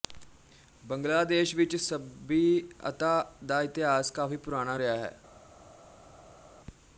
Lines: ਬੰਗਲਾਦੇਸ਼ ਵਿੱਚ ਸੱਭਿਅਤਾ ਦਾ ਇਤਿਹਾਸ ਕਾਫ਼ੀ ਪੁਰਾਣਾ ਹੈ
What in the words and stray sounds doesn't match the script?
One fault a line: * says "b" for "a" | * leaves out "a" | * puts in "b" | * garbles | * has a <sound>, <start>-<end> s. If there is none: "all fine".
* puts in "ਰਿਹਾ"